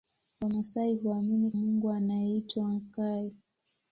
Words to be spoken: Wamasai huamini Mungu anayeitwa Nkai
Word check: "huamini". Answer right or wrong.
right